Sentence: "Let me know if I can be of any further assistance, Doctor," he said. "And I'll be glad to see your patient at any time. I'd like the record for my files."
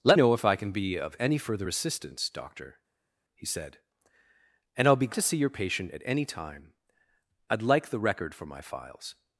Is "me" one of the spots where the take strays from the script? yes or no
yes